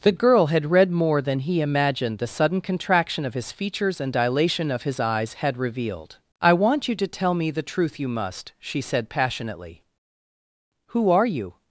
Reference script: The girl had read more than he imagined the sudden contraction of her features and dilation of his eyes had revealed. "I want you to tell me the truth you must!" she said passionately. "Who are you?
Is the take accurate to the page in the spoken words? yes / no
no